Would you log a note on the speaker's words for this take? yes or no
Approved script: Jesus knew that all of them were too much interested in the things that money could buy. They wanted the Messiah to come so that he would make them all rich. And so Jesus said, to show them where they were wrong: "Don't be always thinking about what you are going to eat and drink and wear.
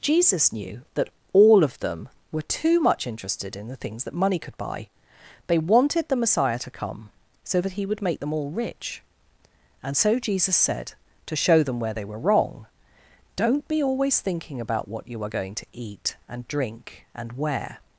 no